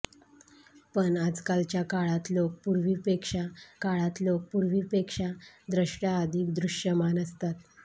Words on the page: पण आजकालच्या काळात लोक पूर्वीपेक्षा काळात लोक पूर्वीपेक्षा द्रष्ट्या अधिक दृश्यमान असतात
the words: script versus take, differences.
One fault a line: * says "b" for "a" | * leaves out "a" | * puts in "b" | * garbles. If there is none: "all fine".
all fine